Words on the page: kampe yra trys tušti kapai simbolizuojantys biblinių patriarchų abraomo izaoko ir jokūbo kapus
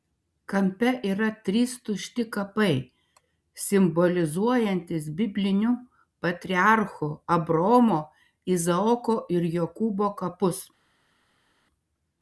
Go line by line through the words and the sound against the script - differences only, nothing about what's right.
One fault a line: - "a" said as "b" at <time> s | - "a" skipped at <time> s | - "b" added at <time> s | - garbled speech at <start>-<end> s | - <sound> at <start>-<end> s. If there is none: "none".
none